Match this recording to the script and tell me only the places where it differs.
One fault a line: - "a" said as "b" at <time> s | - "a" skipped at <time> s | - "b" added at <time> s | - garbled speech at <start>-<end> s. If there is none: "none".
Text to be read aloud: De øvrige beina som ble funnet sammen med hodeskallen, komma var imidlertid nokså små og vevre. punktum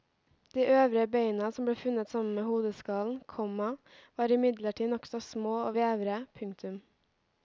none